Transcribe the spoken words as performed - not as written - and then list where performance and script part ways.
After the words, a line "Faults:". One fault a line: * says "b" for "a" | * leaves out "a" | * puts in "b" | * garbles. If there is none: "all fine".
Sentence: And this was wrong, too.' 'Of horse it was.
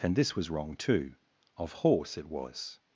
And this was wrong, too.' 'Of horse it was.
Faults:
all fine